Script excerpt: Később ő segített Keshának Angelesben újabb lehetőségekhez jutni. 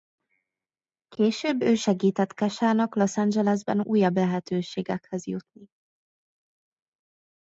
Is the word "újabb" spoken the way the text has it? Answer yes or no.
yes